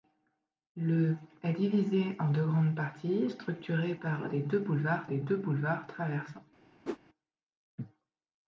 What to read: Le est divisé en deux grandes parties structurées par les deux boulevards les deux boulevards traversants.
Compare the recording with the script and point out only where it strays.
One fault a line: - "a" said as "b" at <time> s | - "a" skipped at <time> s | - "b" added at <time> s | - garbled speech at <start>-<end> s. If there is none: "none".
none